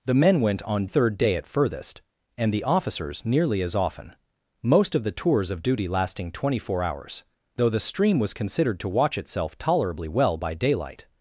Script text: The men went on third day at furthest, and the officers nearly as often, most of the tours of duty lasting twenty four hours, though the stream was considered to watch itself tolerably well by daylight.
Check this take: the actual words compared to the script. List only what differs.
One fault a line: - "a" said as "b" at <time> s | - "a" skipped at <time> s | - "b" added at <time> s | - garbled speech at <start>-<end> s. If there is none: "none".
none